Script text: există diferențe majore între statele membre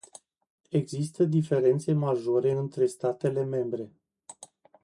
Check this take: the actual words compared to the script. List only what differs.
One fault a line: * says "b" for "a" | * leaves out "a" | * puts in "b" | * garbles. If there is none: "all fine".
all fine